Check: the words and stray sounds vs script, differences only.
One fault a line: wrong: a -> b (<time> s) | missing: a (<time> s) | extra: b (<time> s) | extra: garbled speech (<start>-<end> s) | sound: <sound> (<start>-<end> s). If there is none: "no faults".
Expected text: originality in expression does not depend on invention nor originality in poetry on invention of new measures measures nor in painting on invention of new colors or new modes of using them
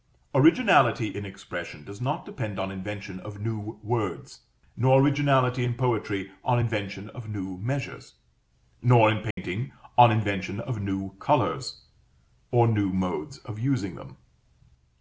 extra: of new words (3.2 s)
missing: measures (8.1 s)
sound: dropout (9.3-9.4 s)